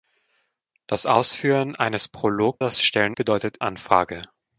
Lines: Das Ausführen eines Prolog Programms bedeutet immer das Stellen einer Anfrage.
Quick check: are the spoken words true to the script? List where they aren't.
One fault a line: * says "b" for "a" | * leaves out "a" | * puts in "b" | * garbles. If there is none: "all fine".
* leaves out "Programms bedeutet immer"
* says "bedeutet" for "einer"